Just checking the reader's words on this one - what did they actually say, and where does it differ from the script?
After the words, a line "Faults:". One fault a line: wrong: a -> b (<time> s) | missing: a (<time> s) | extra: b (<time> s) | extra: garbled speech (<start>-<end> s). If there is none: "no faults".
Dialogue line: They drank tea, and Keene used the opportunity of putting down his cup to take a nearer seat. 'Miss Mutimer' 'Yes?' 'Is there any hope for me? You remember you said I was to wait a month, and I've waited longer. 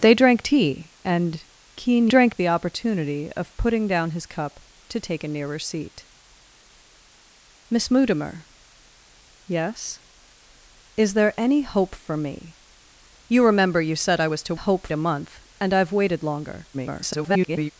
They drank tea, and Keene drank the opportunity of putting down his cup to take a nearer seat. 'Miss Mutimer' 'Yes?' 'Is there any hope for me? You remember you said I was to hope a month, and I've waited longer. [garbled]
Faults:
wrong: used -> drank (2.1 s)
wrong: wait -> hope (14.5 s)
extra: garbled speech (16.7-17.7 s)